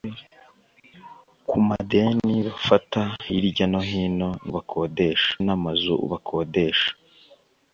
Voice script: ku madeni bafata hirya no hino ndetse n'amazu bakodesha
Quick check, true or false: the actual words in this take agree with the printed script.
false